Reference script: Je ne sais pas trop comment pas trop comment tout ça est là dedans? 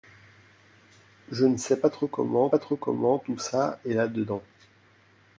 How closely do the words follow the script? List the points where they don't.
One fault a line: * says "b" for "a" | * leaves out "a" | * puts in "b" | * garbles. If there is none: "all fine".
all fine